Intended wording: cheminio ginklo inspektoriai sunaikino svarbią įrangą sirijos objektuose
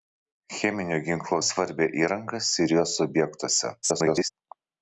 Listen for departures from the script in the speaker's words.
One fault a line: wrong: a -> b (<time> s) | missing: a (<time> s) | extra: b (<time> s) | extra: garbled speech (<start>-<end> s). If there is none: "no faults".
missing: inspektoriai sunaikino (1.4 s)
extra: garbled speech (3.8-4.3 s)